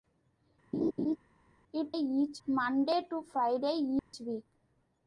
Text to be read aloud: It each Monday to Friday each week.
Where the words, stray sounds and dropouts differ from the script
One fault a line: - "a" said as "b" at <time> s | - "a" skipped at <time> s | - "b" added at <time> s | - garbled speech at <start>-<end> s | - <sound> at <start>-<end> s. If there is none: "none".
- laugh at 0.7-1.2 s
- dropout at 4.0-4.1 s